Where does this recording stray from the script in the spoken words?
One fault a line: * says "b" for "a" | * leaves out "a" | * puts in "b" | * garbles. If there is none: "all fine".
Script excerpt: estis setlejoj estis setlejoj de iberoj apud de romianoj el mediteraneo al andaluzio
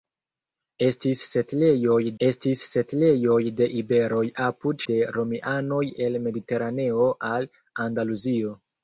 all fine